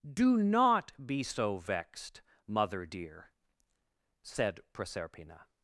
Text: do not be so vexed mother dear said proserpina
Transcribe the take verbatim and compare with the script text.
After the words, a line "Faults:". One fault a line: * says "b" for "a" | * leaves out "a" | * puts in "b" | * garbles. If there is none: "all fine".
do not be so vexed mother dear said proserpina
Faults:
all fine